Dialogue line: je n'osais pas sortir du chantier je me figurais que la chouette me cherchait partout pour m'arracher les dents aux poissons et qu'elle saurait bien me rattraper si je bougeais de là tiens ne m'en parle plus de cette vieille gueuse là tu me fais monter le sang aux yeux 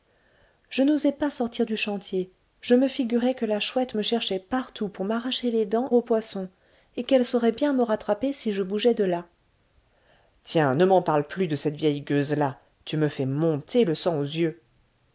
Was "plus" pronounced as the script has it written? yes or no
yes